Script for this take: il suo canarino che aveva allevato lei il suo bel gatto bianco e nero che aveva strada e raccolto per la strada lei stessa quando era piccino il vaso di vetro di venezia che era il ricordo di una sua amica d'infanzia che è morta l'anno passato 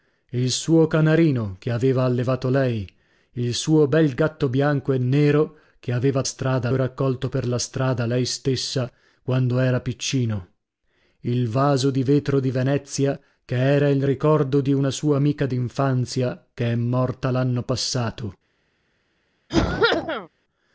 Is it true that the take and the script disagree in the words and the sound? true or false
true